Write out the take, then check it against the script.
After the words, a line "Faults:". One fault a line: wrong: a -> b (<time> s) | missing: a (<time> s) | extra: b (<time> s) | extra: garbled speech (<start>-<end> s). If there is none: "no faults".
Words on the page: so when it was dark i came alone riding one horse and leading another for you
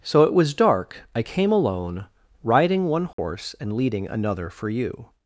so it was dark i came alone riding one horse and leading another for you
Faults:
missing: when (0.2 s)